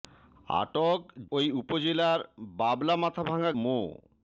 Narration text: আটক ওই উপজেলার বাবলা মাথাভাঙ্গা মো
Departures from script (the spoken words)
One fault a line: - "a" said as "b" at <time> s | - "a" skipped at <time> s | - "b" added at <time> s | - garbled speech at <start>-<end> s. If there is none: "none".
none